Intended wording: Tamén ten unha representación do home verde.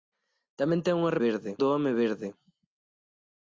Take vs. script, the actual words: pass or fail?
fail